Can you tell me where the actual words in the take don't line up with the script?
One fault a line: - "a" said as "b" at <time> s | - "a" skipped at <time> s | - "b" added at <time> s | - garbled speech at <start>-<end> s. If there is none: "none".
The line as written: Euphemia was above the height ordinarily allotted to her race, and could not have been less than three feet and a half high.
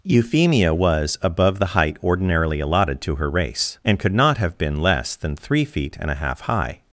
none